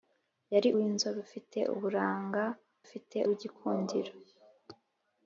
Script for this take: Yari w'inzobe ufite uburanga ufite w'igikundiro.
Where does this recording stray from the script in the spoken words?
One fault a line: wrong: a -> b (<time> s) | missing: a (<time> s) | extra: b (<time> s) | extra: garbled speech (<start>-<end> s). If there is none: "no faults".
no faults